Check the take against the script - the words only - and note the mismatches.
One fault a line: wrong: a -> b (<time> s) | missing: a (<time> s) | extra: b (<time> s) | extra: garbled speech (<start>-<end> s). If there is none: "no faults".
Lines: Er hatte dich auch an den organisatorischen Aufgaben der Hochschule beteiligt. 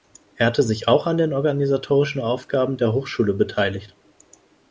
wrong: dich -> sich (0.6 s)